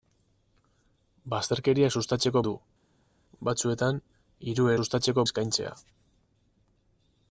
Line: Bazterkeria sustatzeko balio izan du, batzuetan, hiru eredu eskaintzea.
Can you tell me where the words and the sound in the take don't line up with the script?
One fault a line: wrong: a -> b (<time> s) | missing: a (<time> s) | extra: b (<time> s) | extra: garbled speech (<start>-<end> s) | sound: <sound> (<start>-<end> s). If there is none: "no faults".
missing: balio izan (2.4 s)
wrong: eredu -> sustatzeko (4.8 s)